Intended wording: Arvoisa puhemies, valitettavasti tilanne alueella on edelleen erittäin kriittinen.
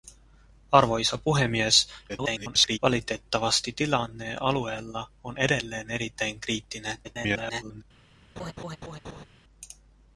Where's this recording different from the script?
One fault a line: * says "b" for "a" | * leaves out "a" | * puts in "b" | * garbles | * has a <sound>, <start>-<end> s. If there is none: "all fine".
* garbles
* garbles
* has a laugh, 8.4-9.3 s